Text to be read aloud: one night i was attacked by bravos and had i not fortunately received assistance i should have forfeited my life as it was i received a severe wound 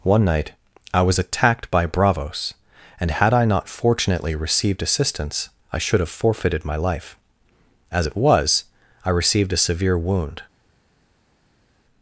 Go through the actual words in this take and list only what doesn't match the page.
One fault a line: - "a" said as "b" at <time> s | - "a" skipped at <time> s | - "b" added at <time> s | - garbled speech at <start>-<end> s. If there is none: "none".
none